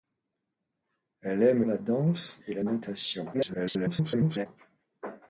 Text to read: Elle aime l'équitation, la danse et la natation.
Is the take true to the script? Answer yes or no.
no